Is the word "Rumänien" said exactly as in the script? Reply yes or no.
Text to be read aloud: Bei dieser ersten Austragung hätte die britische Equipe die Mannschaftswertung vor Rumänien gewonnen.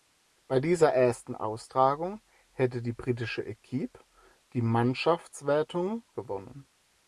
no